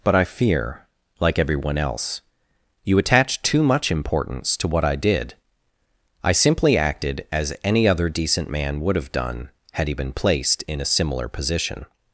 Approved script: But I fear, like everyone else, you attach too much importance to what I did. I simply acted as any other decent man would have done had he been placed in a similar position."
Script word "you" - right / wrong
right